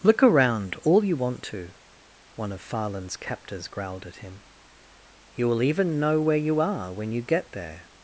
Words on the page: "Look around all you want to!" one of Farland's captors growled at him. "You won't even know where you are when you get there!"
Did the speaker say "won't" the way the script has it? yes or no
no